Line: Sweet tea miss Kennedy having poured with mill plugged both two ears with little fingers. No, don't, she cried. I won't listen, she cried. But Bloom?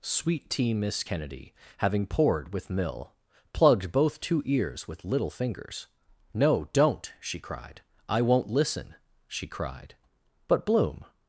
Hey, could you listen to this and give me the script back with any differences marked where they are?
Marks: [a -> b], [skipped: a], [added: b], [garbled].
Sweet tea miss Kennedy having poured with mill plugged both two ears with little fingers. No, don't, she cried. I won't listen, she cried. But Bloom?